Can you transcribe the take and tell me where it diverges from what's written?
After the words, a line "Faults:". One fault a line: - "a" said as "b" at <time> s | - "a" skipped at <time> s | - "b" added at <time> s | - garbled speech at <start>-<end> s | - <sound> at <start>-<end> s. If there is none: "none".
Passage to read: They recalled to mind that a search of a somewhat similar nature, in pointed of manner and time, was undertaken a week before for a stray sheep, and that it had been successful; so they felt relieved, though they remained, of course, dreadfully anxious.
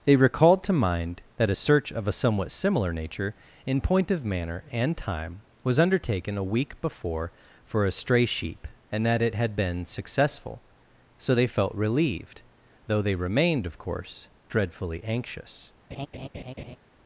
They recalled to mind that a search of a somewhat similar nature, in point of manner and time, was undertaken a week before for a stray sheep, and that it had been successful; so they felt relieved, though they remained, of course, dreadfully anxious.
Faults:
- "pointed" said as "point" at 3.8 s
- laugh at 15.9-16.8 s